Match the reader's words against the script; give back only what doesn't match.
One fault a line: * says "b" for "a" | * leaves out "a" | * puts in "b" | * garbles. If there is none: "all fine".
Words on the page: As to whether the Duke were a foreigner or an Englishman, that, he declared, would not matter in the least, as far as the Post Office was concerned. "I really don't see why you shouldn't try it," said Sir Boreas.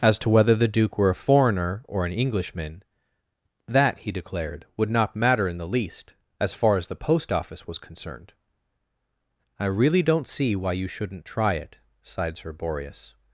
* says "sighed" for "said"